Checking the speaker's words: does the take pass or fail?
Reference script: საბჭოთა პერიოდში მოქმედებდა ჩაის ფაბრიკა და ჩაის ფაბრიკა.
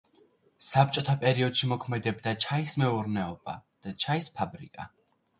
fail